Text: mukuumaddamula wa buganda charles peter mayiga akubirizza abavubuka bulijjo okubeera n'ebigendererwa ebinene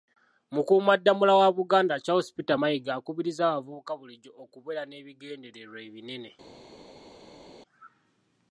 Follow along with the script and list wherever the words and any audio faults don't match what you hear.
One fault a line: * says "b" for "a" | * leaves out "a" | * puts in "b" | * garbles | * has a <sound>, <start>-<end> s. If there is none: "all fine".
all fine